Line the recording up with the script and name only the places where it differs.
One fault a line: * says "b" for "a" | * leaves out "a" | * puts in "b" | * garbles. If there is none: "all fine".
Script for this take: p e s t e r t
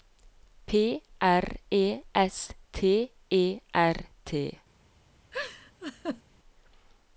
* puts in "r"